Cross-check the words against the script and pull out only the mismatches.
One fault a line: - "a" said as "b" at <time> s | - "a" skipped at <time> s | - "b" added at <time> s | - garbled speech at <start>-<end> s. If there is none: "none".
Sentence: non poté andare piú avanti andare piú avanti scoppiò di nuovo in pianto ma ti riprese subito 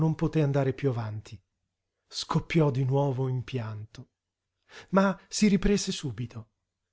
- "andare piú avanti" skipped at 1.4 s
- "ti" said as "si" at 5.3 s